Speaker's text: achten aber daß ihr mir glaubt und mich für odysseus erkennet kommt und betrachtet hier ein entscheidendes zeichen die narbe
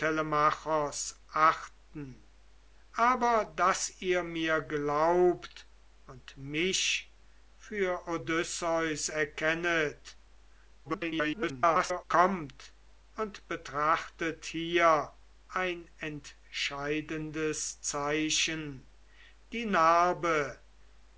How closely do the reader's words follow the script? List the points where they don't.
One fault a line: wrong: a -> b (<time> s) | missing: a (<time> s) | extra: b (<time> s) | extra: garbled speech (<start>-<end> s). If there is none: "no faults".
extra: garbled speech (10.8-12.0 s)